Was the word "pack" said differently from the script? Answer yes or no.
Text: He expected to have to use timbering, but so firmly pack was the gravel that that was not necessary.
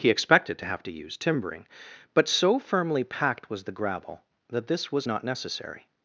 yes